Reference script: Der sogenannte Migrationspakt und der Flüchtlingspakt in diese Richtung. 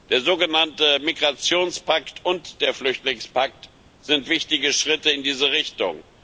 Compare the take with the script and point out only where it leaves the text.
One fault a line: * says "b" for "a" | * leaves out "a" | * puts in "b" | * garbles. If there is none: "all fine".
* puts in "sind wichtige Schritte"